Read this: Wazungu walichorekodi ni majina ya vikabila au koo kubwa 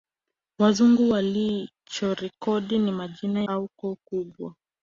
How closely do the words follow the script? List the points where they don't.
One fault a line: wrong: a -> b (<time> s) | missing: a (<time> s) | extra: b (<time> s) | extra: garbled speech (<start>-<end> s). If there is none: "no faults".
missing: ya vikabila (3.4 s)